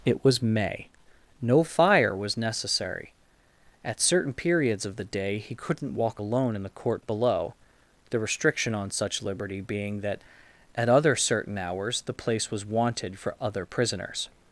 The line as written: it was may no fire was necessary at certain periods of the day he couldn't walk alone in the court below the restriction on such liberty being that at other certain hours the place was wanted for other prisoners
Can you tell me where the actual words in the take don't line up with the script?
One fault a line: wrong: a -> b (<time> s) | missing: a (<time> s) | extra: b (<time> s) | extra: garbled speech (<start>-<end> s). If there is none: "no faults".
no faults